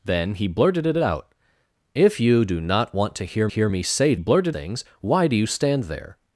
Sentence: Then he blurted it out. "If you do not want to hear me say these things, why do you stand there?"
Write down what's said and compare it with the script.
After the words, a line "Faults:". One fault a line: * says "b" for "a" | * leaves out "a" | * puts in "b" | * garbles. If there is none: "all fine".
Then he blurted it out. "If you do not want to hear hear me say blurted things, why do you stand there?"
Faults:
* puts in "hear"
* says "blurted" for "these"